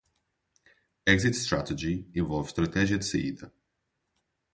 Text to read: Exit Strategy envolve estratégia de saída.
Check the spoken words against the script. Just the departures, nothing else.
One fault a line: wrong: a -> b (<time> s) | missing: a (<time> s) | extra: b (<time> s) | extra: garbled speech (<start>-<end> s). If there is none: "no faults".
no faults